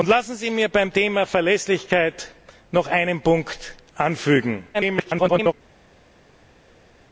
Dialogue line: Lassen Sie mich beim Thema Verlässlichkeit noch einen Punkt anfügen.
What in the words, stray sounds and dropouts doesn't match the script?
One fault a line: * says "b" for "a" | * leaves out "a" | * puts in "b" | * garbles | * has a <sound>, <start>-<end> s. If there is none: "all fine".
* garbles